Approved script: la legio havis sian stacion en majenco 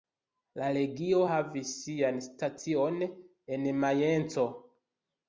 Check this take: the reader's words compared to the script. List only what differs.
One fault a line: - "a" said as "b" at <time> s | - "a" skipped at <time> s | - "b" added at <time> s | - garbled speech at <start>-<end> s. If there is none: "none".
none